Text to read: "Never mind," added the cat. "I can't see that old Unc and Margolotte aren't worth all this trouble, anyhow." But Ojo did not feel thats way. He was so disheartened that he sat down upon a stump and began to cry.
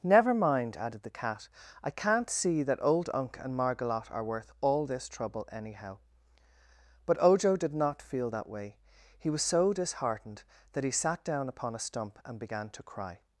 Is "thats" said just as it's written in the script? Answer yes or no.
no